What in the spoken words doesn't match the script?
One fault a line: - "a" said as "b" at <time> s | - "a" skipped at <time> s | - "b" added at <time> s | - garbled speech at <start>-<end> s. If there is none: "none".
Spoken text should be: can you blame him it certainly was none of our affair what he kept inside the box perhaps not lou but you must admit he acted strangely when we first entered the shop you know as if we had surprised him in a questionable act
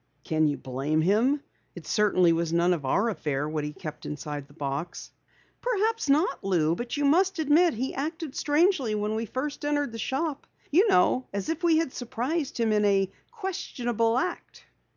none